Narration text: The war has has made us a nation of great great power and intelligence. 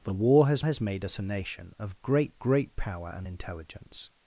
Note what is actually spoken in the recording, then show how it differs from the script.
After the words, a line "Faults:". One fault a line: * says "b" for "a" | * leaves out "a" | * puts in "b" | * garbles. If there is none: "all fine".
The war has has made us a nation of great great power and intelligence.
Faults:
all fine